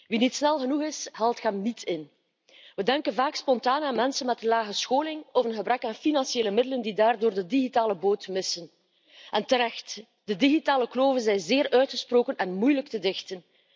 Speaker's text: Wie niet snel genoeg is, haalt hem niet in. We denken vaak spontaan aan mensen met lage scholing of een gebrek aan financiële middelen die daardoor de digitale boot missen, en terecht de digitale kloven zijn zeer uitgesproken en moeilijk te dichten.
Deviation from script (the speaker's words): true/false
false